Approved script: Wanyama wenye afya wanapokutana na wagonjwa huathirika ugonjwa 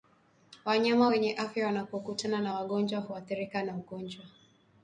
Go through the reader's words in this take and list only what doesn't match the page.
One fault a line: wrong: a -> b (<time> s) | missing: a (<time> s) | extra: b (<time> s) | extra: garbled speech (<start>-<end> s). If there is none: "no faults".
extra: na (3.6 s)